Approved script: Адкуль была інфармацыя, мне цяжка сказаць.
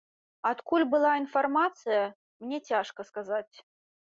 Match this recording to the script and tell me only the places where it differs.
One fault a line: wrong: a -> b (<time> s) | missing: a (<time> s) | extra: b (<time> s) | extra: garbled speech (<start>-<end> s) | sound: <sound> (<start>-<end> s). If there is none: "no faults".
no faults